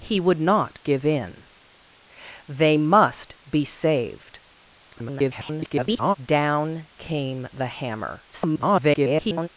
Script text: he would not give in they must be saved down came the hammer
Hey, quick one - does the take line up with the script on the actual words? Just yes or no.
no